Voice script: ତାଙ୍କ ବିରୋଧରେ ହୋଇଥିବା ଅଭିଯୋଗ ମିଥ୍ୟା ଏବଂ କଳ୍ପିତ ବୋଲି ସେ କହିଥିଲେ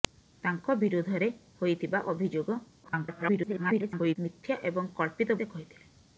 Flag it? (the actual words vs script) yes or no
yes